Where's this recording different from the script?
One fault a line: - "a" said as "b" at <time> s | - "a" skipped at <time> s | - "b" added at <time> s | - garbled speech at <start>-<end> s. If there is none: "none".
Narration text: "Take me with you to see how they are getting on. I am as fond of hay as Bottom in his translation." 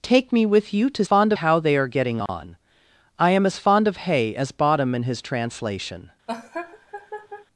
- "see" said as "fond" at 1.0 s